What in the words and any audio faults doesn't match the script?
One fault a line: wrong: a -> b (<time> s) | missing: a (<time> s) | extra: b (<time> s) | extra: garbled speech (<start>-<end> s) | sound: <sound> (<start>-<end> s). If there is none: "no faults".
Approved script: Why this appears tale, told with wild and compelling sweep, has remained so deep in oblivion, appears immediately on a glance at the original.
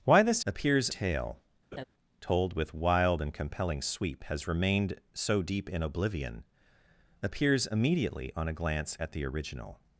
sound: laugh (1.7-1.8 s)